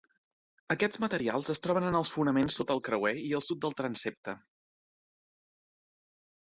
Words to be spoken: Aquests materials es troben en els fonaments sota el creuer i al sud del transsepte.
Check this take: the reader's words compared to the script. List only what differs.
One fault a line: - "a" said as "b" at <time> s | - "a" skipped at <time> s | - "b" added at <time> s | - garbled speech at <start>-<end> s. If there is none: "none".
none